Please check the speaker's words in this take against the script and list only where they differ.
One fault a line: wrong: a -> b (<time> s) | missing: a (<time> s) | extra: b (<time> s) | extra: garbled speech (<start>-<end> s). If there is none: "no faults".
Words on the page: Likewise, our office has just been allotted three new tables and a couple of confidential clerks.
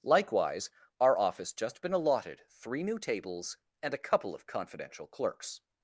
missing: has (1.5 s)